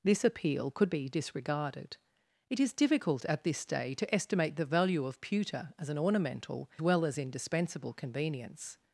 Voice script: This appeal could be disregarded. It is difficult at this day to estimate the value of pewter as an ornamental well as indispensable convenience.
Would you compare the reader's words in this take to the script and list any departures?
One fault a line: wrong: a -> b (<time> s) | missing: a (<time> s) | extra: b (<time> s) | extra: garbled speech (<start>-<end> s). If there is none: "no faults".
no faults